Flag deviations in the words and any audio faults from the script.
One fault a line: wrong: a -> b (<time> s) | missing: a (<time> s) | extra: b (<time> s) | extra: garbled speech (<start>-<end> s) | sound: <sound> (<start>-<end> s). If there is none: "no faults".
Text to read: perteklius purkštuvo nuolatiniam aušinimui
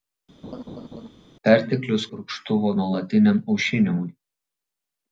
sound: laugh (0.4-1.1 s)